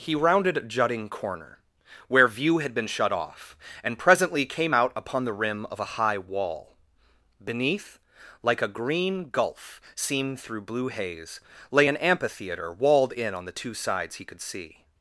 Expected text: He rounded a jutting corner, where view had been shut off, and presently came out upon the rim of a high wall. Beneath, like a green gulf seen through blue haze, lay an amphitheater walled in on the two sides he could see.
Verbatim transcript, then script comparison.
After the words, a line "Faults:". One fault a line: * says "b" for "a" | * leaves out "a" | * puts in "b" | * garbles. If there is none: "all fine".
He rounded a jutting corner, where view had been shut off, and presently came out upon the rim of a high wall. Beneath, like a green gulf seen through blue haze, lay an amphitheater walled in on the two sides he could see.
Faults:
all fine